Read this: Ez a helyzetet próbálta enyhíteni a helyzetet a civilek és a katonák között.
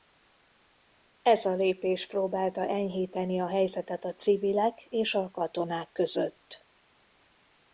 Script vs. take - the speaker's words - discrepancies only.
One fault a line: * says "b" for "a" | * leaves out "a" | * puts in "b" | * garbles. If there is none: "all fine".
* says "lépés" for "helyzetet"